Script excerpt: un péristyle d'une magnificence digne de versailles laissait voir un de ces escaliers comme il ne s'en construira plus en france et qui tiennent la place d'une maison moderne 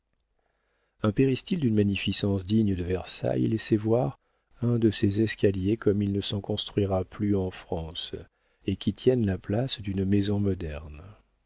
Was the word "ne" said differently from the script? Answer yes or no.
no